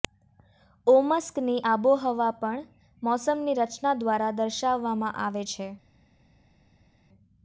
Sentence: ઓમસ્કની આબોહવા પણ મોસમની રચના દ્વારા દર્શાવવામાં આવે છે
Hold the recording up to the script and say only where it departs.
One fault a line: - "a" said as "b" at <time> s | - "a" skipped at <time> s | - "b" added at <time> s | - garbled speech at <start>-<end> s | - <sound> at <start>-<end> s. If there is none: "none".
none